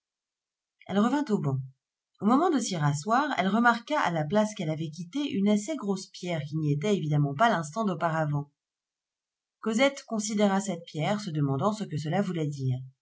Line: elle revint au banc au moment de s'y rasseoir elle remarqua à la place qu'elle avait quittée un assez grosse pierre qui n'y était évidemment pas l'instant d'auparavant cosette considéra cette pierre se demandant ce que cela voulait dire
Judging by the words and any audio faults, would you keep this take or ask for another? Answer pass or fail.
fail